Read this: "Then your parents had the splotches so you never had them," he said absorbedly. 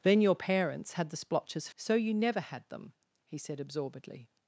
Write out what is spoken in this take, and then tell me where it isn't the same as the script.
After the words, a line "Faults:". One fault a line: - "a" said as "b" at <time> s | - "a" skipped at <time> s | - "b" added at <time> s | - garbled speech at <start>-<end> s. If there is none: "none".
"Then your parents had the splotches so you never had them," he said absorbedly.
Faults:
none